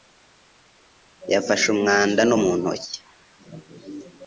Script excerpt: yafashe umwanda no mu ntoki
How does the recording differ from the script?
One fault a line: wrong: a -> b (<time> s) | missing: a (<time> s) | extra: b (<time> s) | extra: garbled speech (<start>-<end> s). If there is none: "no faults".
no faults